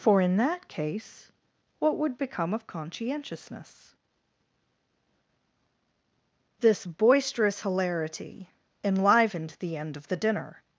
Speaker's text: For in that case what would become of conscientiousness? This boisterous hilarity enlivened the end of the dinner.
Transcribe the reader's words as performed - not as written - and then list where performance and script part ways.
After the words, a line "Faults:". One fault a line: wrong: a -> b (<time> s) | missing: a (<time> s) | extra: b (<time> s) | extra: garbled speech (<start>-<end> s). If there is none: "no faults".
For in that case what would become of conscientiousness? This boisterous hilarity enlivened the end of the dinner.
Faults:
no faults